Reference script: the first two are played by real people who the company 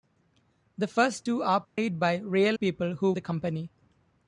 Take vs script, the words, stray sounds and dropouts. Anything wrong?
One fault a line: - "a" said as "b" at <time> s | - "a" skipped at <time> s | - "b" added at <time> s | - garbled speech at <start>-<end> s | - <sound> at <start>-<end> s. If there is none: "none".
- dropout at 1.6-1.8 s